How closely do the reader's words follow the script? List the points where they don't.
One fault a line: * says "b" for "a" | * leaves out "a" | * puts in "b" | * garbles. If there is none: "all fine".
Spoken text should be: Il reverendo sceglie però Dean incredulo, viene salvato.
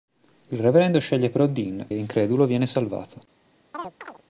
all fine